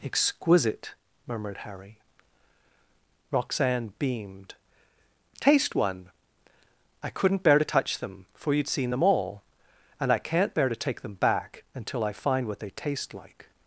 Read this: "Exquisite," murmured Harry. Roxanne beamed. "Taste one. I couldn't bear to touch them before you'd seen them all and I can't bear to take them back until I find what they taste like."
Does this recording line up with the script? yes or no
no